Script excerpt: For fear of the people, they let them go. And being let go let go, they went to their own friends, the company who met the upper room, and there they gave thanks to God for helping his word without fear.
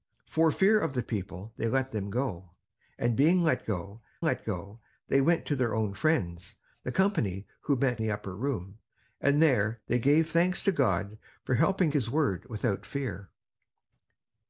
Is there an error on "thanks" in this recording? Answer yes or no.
no